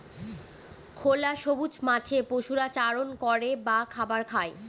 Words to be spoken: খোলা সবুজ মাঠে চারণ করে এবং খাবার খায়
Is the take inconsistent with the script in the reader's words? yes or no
yes